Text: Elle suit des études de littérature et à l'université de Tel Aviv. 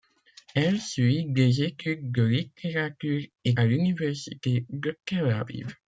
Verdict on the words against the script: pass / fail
pass